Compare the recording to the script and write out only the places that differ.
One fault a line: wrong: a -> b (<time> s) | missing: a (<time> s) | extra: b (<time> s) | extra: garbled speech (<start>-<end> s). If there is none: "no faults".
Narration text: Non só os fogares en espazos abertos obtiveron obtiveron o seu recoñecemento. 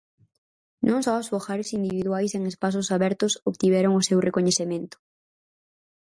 extra: individuais (1.8 s)
missing: obtiveron (3.9 s)